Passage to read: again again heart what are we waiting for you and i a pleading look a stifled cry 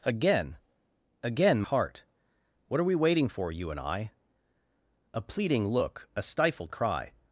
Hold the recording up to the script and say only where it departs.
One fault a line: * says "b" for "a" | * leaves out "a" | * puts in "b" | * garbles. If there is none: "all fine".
all fine